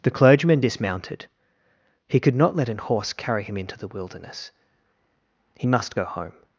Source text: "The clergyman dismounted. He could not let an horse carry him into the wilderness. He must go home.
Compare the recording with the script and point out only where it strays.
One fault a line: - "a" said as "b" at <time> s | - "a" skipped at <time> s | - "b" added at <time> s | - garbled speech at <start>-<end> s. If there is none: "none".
none